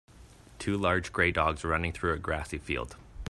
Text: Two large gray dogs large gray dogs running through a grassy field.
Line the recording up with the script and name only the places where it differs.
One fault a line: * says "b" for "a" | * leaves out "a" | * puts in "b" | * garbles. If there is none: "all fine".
* leaves out "large gray dogs"